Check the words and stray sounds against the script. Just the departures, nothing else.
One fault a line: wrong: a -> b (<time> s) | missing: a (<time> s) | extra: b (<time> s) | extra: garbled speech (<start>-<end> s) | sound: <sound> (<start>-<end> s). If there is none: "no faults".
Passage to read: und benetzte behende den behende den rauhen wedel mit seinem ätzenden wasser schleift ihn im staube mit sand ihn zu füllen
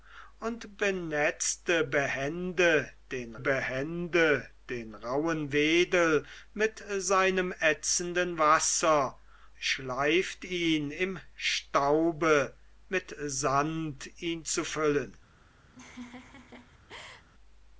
sound: laugh (15.7-17.3 s)